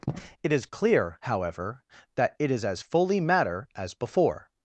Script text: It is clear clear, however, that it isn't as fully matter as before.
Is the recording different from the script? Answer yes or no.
yes